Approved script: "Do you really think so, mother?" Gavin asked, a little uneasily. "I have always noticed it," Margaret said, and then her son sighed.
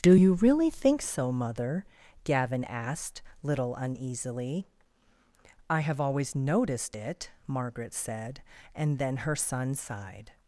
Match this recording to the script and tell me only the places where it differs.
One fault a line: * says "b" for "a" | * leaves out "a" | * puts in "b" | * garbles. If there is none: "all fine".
* leaves out "a"